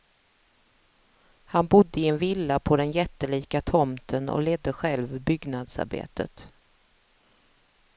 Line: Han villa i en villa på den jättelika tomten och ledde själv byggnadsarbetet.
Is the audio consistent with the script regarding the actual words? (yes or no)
no